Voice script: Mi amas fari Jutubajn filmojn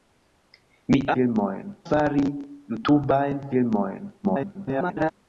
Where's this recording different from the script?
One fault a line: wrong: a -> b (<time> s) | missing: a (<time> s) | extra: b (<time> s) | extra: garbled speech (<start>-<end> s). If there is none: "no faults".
wrong: amas -> filmojn (1.2 s)
extra: garbled speech (4.2-5.1 s)